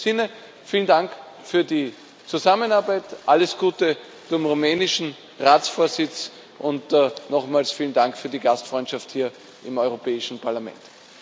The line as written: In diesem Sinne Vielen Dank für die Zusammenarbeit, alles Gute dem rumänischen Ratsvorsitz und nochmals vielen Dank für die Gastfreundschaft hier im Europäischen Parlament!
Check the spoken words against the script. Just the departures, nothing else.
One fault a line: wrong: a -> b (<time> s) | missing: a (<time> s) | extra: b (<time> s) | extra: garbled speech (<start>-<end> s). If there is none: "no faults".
no faults